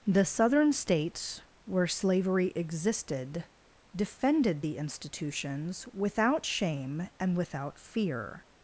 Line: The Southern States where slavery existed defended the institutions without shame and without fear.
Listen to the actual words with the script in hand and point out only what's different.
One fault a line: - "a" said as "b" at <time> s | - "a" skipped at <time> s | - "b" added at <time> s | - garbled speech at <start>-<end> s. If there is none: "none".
none